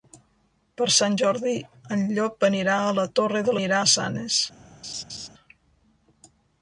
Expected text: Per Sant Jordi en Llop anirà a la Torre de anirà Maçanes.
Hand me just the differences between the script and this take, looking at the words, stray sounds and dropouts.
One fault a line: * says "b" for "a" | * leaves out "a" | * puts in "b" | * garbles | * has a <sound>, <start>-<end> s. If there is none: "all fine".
* has a laugh, 4.8-5.3 s